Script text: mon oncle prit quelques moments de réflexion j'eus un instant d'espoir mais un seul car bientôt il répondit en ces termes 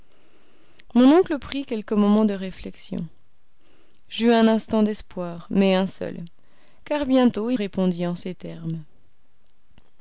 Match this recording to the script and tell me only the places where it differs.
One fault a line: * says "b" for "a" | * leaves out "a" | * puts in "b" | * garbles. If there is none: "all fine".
all fine